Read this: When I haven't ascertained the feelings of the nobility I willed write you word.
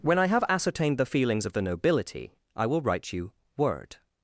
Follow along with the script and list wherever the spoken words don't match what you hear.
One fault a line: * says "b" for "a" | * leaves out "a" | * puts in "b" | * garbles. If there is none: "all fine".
* says "have" for "haven't"
* says "will" for "willed"